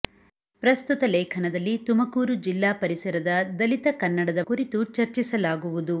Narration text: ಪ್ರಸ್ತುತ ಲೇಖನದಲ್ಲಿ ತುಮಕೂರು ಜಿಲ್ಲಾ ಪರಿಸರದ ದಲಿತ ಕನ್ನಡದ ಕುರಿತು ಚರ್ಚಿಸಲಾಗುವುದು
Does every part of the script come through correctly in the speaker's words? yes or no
yes